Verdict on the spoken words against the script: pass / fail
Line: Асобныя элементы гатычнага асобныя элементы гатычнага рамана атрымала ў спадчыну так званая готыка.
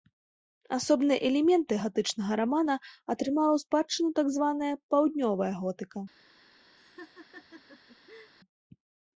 fail